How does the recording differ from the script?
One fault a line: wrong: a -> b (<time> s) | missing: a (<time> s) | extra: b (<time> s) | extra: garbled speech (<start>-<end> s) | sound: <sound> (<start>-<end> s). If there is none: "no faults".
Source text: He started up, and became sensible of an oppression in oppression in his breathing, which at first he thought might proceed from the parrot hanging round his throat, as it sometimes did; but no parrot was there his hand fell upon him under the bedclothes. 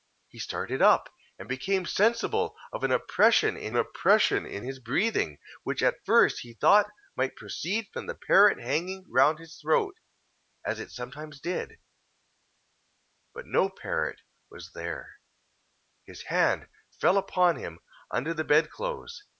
no faults